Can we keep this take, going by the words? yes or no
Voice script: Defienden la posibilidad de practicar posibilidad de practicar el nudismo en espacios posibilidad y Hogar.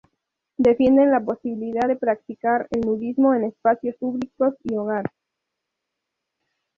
no